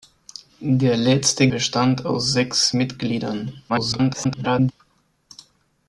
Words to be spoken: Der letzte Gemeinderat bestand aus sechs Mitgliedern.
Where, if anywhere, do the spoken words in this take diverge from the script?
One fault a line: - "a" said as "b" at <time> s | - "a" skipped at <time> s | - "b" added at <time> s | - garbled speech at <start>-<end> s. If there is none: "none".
- "Gemeinderat" skipped at 1.5 s
- garbled speech at 3.7-4.7 s